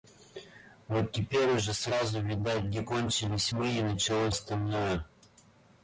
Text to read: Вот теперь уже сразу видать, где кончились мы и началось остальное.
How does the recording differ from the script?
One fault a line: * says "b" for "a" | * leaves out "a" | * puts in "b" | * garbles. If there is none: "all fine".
all fine